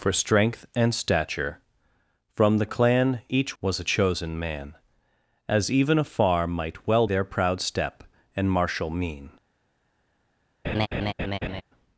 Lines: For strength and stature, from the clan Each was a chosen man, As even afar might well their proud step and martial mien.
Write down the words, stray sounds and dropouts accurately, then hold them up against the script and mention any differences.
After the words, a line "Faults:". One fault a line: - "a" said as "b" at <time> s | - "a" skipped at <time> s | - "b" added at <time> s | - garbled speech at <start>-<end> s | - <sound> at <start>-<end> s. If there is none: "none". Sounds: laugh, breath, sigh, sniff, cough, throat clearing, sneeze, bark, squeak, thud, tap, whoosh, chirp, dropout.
For strength and stature, from the clan Each was a chosen man, As even afar might well their proud step and martial mien.
Faults:
- laugh at 10.6-11.6 s